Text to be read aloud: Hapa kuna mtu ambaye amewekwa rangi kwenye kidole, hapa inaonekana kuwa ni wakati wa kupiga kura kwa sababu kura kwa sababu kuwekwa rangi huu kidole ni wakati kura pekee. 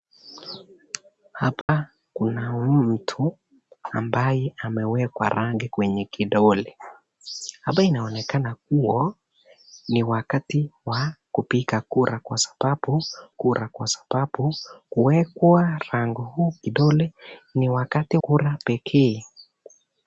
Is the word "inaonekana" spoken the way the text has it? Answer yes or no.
yes